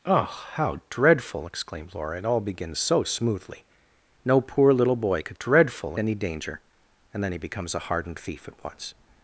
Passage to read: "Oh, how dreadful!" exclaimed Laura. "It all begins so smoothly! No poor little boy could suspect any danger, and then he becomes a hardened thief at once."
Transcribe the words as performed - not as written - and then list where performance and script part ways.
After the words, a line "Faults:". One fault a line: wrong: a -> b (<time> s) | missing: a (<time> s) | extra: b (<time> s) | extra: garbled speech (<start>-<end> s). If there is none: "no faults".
"Oh, how dreadful!" exclaimed Laura. "It all begins so smoothly! No poor little boy could dreadful any danger, and then he becomes a hardened thief at once."
Faults:
wrong: suspect -> dreadful (5.4 s)